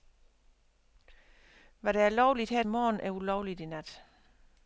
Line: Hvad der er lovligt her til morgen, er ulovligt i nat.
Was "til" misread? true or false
true